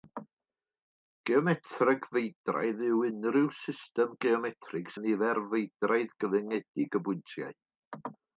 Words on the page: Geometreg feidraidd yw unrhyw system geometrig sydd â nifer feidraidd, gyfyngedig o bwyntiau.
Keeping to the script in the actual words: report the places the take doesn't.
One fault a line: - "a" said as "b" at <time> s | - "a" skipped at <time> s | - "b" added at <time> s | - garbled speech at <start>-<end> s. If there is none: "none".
- "sydd" skipped at 5.0 s